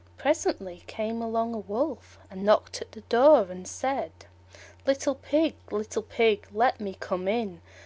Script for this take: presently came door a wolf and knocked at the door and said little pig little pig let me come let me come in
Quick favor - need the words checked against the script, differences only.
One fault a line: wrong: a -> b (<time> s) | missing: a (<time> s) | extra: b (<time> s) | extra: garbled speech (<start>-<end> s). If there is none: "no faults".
wrong: door -> along (1.2 s)
missing: let me come (7.3 s)